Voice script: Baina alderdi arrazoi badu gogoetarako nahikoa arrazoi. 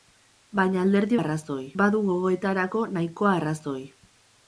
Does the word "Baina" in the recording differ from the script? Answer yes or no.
no